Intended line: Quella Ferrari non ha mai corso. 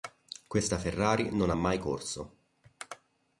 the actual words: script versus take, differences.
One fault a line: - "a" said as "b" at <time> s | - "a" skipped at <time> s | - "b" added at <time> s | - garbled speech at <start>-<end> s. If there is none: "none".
- "Quella" said as "Questa" at 0.5 s